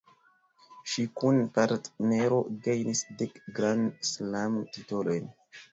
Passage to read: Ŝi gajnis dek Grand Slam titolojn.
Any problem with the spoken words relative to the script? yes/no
yes